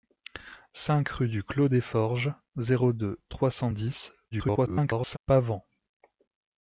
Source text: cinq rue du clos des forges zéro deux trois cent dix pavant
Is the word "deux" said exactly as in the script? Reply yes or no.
yes